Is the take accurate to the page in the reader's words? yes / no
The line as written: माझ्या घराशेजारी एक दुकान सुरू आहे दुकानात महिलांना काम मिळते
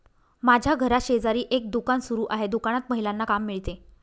yes